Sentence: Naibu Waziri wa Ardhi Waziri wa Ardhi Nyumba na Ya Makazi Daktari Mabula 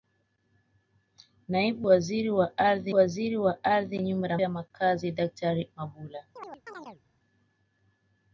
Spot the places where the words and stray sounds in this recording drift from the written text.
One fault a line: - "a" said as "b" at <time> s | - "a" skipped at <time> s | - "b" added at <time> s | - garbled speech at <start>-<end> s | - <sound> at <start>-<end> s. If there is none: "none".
- chirp at 6.4-7.0 s